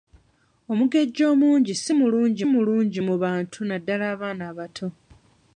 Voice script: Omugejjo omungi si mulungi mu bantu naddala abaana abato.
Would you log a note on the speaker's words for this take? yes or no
yes